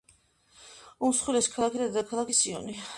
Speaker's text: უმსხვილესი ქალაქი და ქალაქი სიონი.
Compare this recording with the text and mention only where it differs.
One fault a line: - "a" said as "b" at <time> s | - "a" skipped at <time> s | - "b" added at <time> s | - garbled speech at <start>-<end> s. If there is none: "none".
- "ქალაქი" said as "დედაქალაქია" at 1.9 s